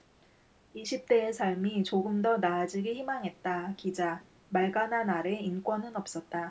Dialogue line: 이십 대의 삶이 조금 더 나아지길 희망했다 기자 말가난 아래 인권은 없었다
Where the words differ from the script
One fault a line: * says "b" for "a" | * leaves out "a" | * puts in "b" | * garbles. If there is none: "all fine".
all fine